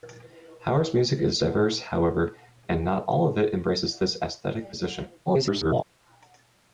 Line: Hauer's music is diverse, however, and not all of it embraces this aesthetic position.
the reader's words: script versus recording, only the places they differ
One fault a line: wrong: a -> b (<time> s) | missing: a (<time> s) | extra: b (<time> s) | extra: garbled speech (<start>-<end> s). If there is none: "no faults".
extra: garbled speech (5.3-5.8 s)